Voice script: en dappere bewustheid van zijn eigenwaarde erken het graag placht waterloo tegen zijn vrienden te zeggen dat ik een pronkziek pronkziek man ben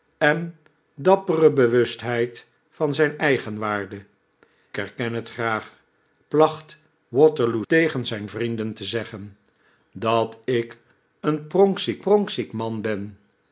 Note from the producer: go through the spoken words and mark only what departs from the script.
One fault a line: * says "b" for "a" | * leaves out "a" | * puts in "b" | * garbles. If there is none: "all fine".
all fine